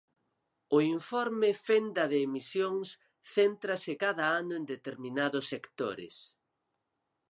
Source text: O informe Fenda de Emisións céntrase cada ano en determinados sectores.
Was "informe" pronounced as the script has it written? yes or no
yes